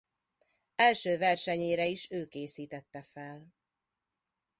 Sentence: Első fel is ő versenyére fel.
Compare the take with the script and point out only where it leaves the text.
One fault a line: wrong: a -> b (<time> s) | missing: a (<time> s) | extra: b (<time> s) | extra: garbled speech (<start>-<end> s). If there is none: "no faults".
wrong: fel -> versenyére (1.2 s)
wrong: versenyére -> készítette (2.3 s)